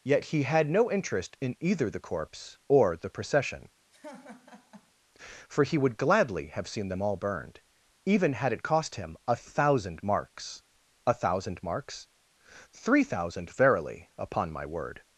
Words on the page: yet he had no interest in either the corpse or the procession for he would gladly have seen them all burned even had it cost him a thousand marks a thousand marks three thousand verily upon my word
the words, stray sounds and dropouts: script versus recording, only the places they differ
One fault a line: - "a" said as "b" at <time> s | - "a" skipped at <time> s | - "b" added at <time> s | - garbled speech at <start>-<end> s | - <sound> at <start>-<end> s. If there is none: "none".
- laugh at 3.9-4.9 s